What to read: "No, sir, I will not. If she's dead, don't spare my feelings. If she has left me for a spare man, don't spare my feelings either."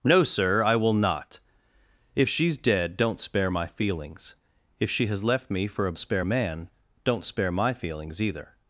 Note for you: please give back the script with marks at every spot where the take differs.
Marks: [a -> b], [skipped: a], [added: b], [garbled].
"No, sir, I will not. If she's dead, don't spare my feelings. If she has left me for a spare man, don't spare my feelings either."